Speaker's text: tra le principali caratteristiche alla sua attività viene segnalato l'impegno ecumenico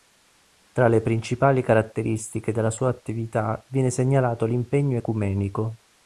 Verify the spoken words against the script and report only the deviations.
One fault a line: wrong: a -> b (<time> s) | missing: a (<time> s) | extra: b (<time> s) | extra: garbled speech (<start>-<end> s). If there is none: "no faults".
wrong: alla -> della (2.5 s)